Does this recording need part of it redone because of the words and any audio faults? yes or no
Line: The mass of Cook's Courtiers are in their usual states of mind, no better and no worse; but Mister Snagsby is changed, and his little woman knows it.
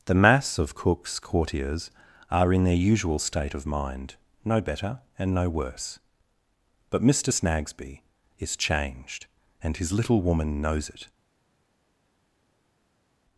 yes